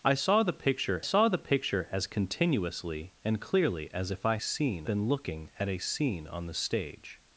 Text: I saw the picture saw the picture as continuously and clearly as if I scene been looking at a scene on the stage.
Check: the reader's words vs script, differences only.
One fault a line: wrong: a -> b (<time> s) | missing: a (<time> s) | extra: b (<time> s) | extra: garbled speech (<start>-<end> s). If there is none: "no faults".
no faults